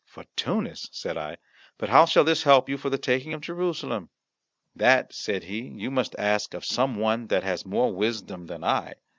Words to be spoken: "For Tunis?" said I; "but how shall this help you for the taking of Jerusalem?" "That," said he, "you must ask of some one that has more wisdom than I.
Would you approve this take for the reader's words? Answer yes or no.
yes